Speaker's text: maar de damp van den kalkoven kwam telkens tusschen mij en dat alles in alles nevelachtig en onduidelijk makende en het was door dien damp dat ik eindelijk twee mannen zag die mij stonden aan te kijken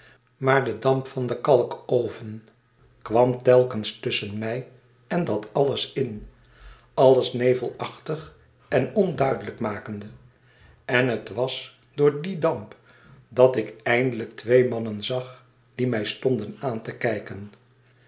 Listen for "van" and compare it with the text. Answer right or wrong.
right